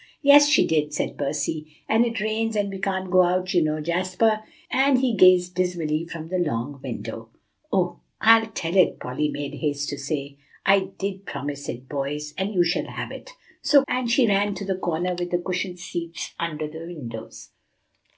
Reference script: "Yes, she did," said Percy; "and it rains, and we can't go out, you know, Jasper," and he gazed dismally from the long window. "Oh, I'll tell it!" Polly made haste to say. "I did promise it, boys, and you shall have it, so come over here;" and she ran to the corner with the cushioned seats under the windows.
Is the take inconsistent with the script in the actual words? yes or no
yes